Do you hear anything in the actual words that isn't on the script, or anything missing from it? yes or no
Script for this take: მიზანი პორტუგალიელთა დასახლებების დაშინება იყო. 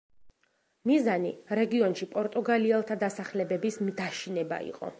yes